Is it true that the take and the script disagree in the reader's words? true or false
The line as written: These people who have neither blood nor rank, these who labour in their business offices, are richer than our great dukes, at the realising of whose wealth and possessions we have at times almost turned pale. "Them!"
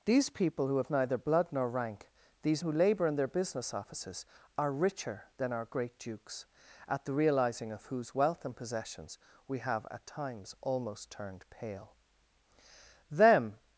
false